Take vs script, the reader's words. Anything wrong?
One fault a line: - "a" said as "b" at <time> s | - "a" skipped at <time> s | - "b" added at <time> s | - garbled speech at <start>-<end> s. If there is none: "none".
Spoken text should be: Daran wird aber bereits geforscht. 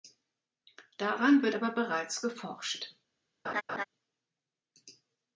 none